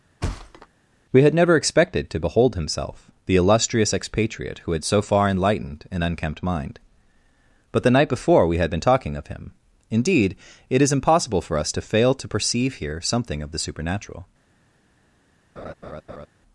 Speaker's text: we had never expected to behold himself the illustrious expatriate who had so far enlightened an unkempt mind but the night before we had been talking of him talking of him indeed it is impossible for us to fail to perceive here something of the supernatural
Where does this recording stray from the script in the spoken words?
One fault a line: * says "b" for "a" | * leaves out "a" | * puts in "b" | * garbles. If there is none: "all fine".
* leaves out "talking of him"